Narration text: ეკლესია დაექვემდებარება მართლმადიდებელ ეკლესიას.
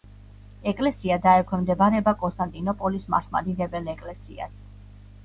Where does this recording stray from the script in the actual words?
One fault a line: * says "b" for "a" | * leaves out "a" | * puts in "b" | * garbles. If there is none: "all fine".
* puts in "კონსტანტინოპოლის"